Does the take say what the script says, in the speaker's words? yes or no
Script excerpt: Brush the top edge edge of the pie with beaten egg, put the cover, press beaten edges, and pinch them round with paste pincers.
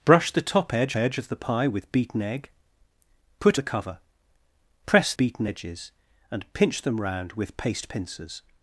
yes